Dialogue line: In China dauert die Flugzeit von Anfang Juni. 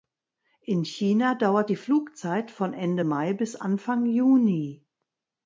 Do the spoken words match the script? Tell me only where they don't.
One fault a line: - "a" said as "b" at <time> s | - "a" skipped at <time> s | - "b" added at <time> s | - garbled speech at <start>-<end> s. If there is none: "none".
- "Ende Mai bis" added at 2.7 s